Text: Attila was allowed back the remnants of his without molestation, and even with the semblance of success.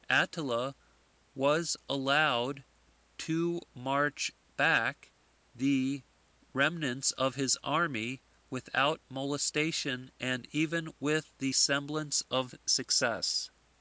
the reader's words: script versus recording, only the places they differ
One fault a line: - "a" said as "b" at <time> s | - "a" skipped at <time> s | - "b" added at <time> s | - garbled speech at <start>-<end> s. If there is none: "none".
- "to march" added at 3.2 s
- "army" added at 7.6 s